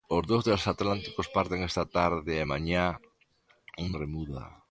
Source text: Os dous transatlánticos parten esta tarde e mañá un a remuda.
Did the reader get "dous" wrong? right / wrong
right